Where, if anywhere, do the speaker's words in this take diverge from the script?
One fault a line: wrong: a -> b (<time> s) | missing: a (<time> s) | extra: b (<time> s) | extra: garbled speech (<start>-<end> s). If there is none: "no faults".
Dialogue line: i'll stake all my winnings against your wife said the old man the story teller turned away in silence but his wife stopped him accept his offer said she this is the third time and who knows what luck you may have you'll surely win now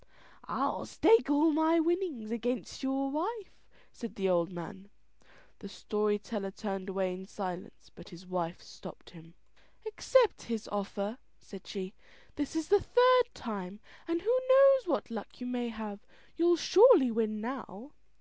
no faults